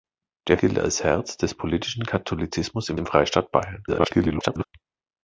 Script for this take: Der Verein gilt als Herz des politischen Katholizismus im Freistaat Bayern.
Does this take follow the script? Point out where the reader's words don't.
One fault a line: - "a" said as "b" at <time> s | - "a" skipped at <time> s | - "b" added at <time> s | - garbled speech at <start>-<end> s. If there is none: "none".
- "Verein" skipped at 0.6 s
- "im" added at 3.0 s
- garbled speech at 3.9-4.6 s